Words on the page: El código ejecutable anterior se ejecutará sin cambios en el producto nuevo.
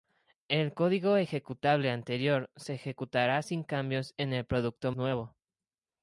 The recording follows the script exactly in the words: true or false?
true